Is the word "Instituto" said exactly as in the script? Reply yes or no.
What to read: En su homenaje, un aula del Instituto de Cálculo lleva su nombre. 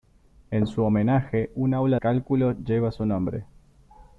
no